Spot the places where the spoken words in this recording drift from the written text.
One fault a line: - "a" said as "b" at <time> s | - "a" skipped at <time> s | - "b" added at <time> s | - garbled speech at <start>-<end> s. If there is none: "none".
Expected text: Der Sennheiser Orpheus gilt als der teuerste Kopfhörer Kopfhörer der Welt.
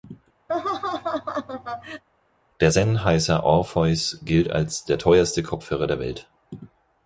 - "Kopfhörer" skipped at 5.8 s